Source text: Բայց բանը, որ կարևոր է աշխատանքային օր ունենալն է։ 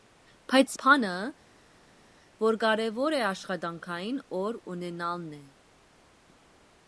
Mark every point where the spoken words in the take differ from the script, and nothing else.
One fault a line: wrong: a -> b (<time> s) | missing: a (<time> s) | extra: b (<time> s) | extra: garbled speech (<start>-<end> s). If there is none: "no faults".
no faults